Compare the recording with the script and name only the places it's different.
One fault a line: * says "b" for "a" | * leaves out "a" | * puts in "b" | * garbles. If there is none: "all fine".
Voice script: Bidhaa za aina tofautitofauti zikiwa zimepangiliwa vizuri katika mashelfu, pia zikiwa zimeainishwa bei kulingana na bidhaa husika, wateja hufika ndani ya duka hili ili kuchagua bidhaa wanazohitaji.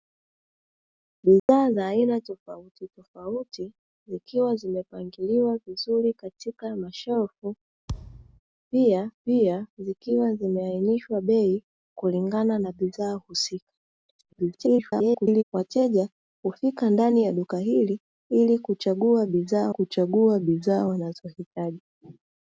* puts in "pia"
* garbles
* puts in "kuchagua bidhaa"